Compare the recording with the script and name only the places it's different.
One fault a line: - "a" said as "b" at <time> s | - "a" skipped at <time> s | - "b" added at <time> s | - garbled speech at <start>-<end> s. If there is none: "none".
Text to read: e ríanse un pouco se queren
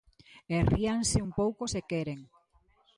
none